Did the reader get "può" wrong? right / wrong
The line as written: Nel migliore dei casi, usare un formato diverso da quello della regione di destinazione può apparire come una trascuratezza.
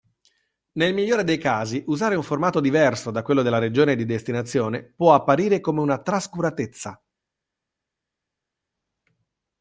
right